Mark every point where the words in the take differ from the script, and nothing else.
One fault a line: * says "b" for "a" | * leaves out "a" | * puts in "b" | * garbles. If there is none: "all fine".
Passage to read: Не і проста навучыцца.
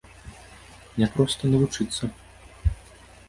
all fine